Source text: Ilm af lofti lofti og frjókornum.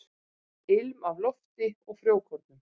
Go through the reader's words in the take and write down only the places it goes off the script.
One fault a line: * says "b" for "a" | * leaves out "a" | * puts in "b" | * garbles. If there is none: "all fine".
* leaves out "lofti"